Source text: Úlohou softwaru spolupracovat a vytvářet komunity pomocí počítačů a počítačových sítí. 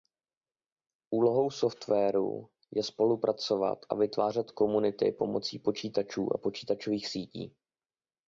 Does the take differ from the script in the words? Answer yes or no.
yes